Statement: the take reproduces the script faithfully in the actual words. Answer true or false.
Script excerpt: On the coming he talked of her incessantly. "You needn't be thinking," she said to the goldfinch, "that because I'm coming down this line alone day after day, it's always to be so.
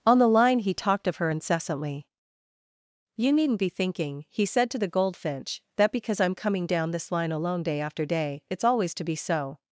false